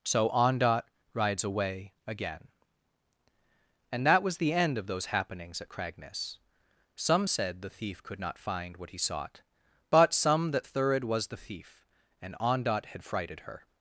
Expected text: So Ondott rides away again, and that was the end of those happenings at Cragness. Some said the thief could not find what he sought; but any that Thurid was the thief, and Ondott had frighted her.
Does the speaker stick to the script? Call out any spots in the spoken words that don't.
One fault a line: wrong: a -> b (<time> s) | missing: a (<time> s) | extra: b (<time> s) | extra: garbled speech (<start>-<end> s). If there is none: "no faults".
wrong: any -> some (10.1 s)